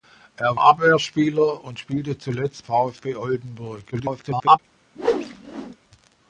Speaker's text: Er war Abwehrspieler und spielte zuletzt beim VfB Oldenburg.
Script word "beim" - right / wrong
wrong